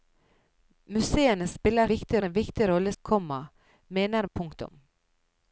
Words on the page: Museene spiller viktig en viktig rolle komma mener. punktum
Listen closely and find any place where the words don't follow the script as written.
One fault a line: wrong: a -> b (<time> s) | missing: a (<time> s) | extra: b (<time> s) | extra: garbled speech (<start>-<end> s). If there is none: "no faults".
no faults